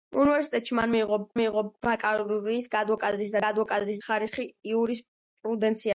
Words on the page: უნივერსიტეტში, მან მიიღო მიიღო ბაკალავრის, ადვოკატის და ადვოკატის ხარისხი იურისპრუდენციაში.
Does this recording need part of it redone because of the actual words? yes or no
no